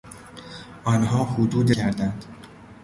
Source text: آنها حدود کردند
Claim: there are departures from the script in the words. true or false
false